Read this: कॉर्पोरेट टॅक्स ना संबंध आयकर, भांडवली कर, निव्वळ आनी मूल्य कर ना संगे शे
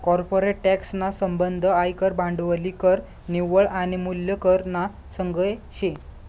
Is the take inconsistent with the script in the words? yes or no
no